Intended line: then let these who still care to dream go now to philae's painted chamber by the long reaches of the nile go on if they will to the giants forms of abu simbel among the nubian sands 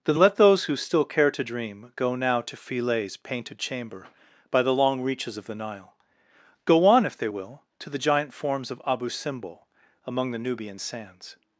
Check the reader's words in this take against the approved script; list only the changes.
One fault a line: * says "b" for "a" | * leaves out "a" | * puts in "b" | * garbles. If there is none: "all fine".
* says "those" for "these"
* says "giant" for "giants"